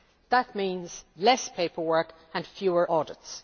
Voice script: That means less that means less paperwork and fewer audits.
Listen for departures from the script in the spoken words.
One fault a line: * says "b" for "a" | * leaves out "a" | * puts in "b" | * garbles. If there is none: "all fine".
* leaves out "that means less"